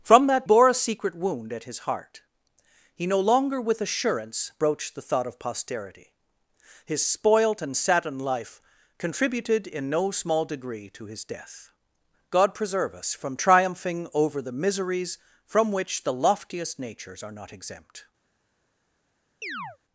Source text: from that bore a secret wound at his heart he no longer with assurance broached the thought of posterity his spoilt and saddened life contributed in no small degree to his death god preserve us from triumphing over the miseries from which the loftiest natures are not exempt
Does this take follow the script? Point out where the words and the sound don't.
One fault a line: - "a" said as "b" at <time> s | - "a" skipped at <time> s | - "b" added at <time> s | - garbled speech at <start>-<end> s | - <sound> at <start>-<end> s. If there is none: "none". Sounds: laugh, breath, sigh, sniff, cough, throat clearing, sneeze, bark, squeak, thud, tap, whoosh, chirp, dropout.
- chirp at 19.4-19.8 s